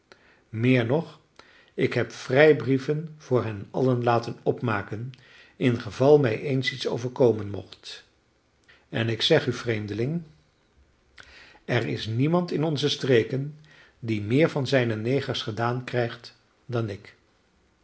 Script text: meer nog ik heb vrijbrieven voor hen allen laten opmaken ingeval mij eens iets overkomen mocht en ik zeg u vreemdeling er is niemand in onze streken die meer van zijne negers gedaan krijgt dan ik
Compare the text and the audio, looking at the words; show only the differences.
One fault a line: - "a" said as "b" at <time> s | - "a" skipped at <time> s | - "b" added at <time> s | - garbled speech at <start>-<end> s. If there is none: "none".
none